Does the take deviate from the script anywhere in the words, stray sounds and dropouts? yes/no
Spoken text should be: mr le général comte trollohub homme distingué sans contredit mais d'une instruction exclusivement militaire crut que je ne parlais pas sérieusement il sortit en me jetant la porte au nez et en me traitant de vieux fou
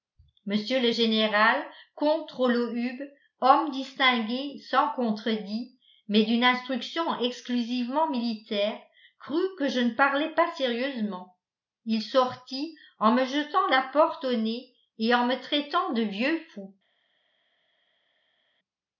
no